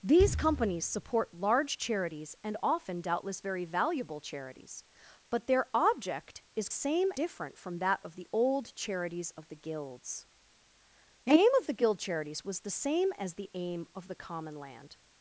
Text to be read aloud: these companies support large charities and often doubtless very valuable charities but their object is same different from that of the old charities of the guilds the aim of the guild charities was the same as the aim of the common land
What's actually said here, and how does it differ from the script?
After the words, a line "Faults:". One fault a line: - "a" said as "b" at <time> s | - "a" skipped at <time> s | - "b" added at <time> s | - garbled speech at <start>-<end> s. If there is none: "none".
these companies support large charities and often doubtless very valuable charities but their object is same different from that of the old charities of the guilds the aim of the guild charities was the same as the aim of the common land
Faults:
none